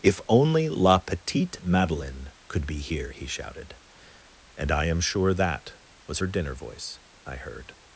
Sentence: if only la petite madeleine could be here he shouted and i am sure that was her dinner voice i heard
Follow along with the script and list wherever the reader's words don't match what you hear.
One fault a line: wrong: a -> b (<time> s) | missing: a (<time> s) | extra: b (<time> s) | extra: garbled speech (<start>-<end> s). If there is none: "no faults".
no faults